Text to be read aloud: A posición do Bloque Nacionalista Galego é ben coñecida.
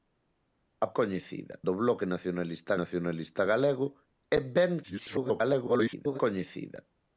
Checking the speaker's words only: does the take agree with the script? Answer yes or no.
no